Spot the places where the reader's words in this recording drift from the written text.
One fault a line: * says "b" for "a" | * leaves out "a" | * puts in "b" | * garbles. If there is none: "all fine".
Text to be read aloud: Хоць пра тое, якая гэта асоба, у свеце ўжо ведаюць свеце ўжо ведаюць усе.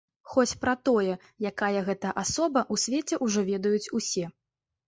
* leaves out "свеце ўжо ведаюць"